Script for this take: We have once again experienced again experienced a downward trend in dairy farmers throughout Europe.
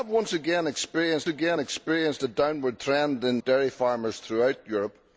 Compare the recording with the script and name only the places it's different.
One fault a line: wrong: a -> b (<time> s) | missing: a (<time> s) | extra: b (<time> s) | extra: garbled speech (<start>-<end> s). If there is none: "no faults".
no faults